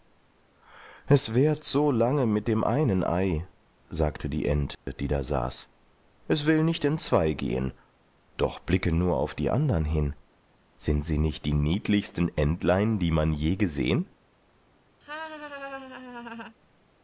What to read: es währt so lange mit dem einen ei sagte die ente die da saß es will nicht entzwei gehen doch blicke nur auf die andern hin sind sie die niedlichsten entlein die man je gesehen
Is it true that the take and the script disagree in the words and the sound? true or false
true